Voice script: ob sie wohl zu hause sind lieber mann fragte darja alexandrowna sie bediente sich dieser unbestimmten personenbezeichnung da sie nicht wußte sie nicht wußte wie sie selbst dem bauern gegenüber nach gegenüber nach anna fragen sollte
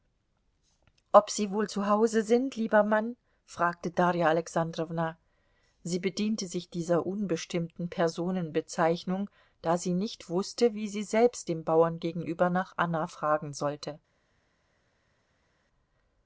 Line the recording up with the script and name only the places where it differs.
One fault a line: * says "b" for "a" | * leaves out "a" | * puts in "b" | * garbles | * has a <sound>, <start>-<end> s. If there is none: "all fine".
* leaves out "sie nicht wußte"
* leaves out "gegenüber nach"